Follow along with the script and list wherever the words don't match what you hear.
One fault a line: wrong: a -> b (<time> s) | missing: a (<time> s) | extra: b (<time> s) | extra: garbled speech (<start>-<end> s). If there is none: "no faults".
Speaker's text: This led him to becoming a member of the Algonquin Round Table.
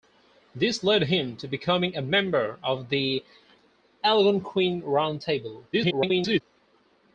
extra: garbled speech (5.7-6.4 s)